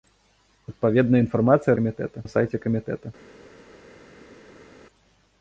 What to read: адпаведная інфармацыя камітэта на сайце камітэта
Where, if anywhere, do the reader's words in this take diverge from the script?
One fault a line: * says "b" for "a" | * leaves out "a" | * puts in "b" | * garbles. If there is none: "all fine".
all fine